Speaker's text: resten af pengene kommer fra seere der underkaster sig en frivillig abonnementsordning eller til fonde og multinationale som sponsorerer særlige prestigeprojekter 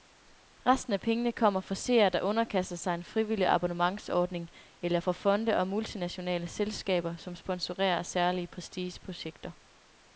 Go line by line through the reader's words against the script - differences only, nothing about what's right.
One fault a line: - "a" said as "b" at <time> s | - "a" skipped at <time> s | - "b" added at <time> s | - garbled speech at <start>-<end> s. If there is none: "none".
- "til" said as "fra" at 5.0 s
- "selskaber" added at 6.5 s